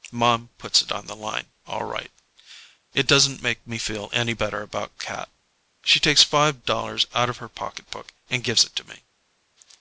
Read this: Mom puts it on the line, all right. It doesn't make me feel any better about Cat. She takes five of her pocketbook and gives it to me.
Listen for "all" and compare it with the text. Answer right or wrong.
right